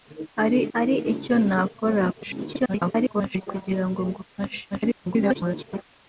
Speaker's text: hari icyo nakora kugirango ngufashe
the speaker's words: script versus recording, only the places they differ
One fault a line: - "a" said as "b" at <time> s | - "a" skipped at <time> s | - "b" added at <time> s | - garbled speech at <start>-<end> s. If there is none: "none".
- "hari" added at 0.7 s
- garbled speech at 2.1-3.5 s
- garbled speech at 4.7-5.8 s